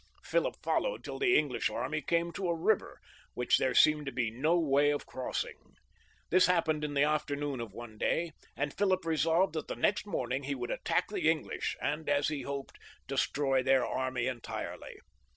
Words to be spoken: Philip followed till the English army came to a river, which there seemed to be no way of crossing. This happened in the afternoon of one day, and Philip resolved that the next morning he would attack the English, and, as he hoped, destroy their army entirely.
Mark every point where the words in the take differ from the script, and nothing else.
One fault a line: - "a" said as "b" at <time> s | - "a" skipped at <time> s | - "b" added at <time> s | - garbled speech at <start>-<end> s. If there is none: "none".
none